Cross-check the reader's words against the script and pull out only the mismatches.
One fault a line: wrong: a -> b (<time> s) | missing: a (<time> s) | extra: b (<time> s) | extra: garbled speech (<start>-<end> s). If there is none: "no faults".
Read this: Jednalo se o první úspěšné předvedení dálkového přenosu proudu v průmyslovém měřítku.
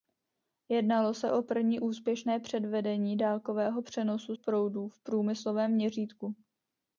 no faults